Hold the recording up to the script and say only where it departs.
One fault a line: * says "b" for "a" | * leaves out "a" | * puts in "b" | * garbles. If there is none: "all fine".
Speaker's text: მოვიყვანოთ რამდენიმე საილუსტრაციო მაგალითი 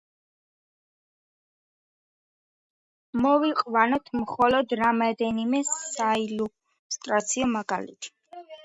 * puts in "მხოლოდ"